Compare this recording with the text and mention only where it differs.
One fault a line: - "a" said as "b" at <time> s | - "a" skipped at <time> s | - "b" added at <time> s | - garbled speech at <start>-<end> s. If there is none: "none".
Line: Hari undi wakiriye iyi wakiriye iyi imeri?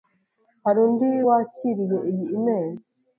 - "wakiriye iyi" skipped at 2.3 s